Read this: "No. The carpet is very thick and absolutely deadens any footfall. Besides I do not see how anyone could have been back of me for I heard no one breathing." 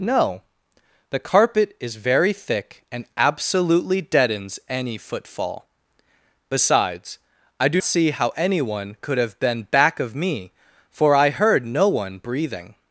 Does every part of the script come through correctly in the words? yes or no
no